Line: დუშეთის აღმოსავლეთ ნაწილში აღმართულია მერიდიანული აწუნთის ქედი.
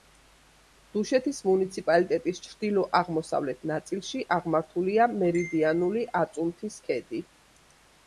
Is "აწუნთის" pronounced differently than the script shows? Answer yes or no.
no